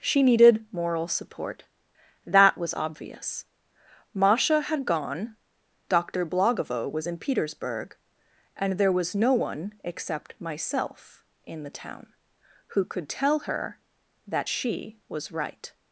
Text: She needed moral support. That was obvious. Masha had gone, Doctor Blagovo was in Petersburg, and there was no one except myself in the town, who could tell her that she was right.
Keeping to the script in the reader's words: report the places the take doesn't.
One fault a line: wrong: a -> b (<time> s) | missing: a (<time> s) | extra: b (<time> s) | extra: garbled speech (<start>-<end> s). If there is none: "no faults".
no faults